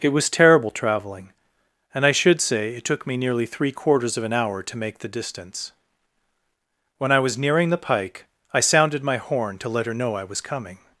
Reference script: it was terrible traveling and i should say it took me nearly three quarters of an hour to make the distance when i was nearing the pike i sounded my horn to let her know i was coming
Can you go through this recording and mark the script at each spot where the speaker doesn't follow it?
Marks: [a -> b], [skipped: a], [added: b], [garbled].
it was terrible traveling and i should say it took me nearly three quarters of an hour to make the distance when i was nearing the pike i sounded my horn to let her know i was coming